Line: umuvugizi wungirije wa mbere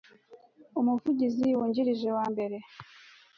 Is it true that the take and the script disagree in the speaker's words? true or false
false